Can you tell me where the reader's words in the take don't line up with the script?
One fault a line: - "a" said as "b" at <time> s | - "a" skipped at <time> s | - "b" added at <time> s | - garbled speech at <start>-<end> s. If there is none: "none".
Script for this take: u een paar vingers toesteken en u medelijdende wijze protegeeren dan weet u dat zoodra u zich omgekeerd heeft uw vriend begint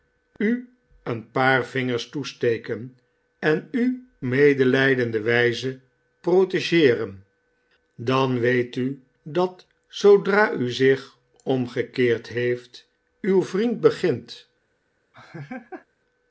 none